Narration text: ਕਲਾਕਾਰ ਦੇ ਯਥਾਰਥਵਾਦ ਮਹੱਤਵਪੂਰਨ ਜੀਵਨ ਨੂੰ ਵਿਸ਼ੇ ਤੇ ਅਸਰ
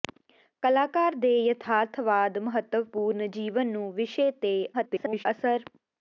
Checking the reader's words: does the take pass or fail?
fail